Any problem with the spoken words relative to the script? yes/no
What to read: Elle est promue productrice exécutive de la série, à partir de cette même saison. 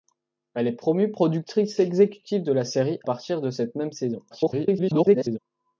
yes